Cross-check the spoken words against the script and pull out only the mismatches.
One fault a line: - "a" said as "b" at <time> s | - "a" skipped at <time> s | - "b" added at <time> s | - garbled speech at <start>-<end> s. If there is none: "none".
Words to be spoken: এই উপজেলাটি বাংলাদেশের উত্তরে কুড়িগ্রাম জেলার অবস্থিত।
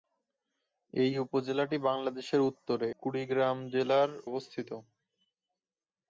none